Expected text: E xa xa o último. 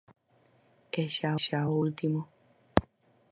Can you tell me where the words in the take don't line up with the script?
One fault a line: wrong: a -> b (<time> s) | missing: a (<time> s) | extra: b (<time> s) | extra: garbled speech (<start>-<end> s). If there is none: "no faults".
no faults